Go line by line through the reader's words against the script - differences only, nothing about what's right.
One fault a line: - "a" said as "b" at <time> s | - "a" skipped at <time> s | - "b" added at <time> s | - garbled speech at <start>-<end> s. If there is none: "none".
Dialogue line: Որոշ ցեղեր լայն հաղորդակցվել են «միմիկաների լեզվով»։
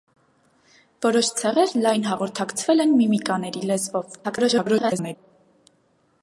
- garbled speech at 4.2-5.2 s